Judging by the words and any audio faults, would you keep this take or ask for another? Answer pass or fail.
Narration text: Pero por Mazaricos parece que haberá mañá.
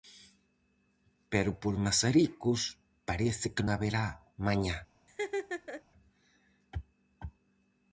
fail